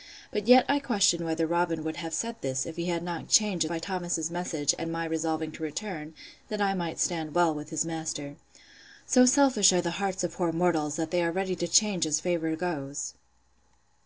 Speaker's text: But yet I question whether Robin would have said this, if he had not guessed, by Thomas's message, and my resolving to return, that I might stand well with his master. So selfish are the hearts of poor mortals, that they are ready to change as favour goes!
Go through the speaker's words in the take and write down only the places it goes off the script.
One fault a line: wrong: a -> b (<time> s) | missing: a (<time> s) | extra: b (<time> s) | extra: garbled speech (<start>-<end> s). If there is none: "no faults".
wrong: guessed -> change (3.3 s)